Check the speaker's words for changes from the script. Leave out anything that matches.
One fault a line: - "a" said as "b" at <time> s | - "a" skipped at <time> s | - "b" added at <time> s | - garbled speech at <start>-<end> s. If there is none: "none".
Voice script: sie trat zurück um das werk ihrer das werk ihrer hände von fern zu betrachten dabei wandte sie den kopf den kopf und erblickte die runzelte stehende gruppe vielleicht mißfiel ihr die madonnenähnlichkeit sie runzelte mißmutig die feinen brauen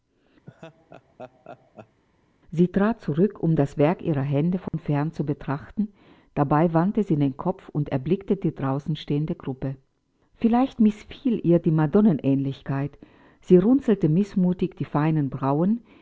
- "das werk ihrer" skipped at 4.2 s
- "den kopf" skipped at 7.7 s
- "runzelte" said as "draußen" at 8.5 s